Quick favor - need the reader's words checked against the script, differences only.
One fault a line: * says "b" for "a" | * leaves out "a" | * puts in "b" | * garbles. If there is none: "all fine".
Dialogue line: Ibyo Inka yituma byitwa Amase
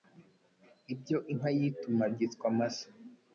all fine